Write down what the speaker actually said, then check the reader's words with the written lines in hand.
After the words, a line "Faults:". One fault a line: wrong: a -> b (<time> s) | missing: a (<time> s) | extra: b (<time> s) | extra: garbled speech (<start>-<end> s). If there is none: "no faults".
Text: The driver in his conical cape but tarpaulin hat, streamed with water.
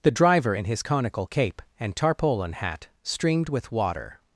The driver in his conical cape and tarpaulin hat, streamed with water.
Faults:
wrong: but -> and (1.8 s)